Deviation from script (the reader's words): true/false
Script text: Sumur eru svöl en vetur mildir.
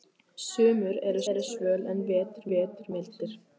true